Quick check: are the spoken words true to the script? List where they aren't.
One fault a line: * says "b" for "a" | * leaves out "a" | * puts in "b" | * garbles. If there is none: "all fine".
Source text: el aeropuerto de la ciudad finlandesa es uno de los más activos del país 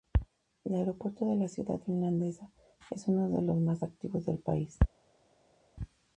all fine